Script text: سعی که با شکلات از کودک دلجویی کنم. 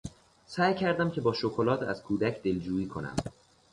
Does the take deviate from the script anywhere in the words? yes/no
yes